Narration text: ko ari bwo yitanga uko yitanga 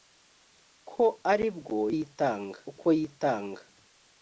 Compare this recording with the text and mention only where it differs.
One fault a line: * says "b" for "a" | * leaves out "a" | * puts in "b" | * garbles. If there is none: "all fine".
all fine